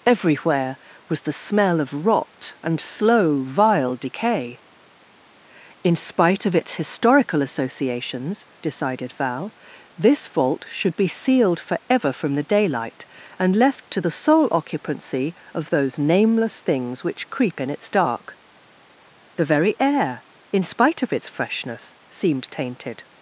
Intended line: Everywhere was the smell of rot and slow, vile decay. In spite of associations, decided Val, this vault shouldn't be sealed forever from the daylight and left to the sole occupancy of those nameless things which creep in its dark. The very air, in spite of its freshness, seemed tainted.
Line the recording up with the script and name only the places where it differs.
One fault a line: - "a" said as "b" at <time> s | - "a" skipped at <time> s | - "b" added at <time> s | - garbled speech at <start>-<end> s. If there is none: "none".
- "its historical" added at 6.5 s
- "shouldn't" said as "should" at 10.7 s